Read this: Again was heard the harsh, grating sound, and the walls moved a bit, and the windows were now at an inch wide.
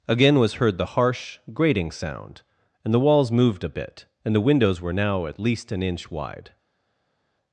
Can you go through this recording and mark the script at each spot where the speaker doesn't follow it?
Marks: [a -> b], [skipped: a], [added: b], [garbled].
Again was heard the harsh, grating sound, and the walls moved a bit, and the windows were now at [added: least] an inch wide.